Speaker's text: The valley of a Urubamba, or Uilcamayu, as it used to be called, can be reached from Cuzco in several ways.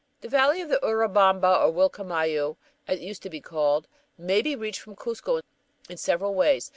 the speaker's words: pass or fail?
fail